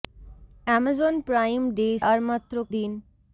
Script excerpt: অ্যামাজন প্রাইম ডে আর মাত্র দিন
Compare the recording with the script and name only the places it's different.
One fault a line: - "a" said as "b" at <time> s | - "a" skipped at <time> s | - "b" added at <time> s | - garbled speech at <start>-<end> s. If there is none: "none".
none